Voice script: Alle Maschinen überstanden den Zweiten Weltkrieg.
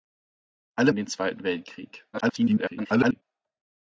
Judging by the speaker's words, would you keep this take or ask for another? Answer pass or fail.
fail